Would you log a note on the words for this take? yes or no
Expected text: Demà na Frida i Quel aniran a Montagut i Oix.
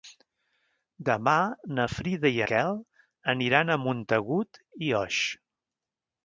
no